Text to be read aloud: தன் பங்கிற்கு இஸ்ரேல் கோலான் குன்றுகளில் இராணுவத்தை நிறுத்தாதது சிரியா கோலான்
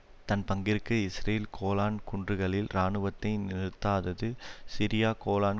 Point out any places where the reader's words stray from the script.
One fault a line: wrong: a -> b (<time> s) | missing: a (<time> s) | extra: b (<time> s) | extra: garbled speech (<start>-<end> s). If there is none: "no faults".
no faults